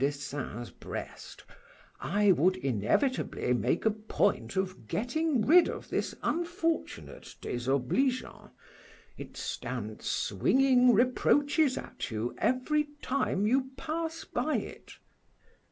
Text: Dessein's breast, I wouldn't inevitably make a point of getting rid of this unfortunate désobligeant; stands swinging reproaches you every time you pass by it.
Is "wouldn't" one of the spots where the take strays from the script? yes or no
yes